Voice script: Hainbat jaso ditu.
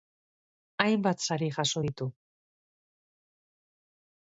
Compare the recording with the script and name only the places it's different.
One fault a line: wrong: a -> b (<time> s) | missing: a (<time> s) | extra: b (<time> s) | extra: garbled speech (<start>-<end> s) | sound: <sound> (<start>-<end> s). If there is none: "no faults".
extra: sari (1.3 s)